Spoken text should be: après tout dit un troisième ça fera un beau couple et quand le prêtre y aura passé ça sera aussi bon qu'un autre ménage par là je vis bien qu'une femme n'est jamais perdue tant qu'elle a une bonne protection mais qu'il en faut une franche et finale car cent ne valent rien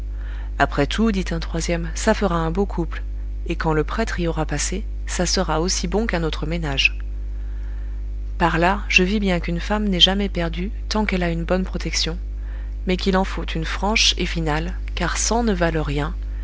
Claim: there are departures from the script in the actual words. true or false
false